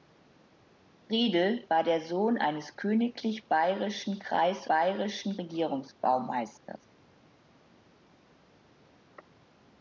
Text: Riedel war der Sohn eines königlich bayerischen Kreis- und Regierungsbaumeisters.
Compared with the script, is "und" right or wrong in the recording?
wrong